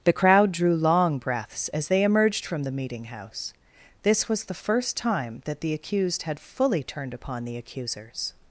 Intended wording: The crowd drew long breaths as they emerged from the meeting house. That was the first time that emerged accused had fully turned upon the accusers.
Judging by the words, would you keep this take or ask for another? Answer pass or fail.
fail